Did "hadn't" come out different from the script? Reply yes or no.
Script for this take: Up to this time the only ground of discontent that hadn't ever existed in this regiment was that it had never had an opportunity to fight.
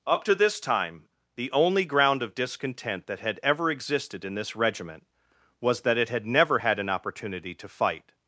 yes